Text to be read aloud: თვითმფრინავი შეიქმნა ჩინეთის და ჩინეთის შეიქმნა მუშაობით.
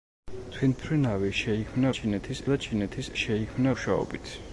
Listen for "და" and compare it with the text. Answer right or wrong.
right